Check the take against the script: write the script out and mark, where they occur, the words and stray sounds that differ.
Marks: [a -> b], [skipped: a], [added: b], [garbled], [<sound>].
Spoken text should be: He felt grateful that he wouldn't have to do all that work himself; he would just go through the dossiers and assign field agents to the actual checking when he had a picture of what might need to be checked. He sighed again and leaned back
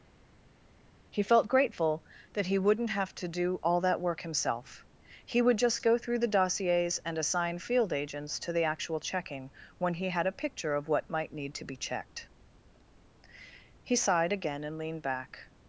He felt grateful that he wouldn't have to do all that work himself; he would just go through the dossiers and assign field agents to the actual checking when he had a picture of what might need to be checked. He sighed again and leaned back